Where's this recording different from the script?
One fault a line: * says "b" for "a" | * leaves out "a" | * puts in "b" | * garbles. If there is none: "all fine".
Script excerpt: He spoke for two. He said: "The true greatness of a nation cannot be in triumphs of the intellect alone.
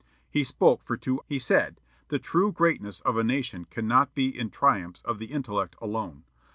all fine